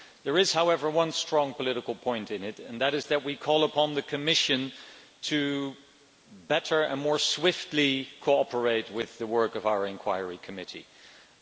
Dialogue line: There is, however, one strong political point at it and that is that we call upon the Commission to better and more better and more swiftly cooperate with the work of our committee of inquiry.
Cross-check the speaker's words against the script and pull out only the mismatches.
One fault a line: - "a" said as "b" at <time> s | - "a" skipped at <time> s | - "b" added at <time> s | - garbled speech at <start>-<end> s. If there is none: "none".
- "at" said as "in" at 2.3 s
- "better and more" skipped at 7.2 s